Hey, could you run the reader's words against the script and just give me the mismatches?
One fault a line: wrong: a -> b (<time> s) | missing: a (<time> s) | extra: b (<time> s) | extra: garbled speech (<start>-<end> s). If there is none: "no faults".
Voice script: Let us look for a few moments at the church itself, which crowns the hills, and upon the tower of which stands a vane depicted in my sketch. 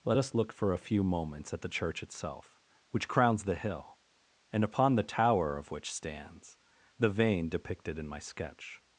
wrong: hills -> hill (3.6 s)
wrong: a -> the (7.0 s)